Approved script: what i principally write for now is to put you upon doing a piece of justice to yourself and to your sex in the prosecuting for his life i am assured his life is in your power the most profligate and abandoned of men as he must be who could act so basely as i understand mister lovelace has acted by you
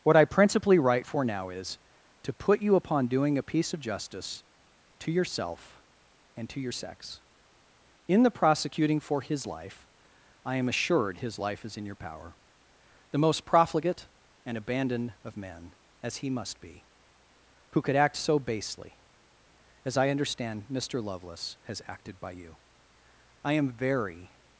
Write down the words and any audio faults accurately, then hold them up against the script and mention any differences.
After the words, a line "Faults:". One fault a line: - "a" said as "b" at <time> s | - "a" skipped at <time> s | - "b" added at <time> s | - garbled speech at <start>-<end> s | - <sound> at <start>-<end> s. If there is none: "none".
what i principally write for now is to put you upon doing a piece of justice to yourself and to your sex in the prosecuting for his life i am assured his life is in your power the most profligate and abandoned of men as he must be who could act so basely as i understand mister lovelace has acted by you i am very
Faults:
- "i am very" added at 23.5 s